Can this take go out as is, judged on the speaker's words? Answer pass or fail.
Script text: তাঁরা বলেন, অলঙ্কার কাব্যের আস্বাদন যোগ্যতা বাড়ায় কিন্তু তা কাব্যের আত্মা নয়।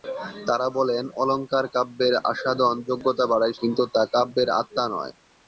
pass